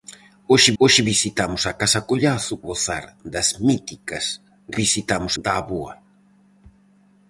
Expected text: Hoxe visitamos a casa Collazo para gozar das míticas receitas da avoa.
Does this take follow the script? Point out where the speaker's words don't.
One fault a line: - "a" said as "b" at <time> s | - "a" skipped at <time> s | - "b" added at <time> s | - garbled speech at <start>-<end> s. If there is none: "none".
- "hoxe" added at 0.8 s
- "para" skipped at 2.5 s
- "receitas" said as "visitamos" at 4.8 s